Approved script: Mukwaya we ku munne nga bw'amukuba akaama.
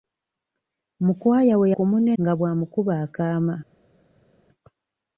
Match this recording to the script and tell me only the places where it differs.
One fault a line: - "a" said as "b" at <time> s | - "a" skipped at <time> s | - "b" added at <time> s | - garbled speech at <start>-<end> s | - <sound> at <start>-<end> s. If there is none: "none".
none